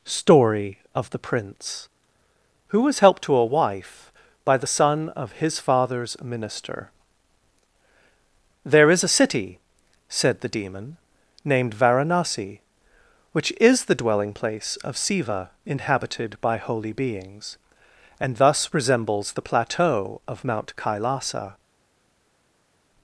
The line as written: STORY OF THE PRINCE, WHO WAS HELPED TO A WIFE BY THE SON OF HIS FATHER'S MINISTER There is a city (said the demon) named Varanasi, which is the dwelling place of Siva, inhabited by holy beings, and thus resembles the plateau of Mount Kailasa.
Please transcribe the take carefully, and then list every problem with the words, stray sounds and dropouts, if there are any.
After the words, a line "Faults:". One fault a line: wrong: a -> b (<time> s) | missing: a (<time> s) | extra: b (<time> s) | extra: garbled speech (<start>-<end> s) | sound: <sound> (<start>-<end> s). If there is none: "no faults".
STORY OF THE PRINCE, WHO WAS HELPED TO A WIFE BY THE SON OF HIS FATHER'S MINISTER There is a city (said the demon) named Varanasi, which is the dwelling place of Siva, inhabited by holy beings, and thus resembles the plateau of Mount Kailasa.
Faults:
no faults